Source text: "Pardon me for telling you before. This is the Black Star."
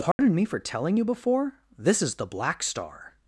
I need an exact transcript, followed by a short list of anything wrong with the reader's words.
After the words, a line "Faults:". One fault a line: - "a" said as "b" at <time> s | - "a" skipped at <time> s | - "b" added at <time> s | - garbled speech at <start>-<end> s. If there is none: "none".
"Pardon me for telling you before. This is the Black Star."
Faults:
none